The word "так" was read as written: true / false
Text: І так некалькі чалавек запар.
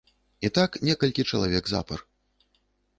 true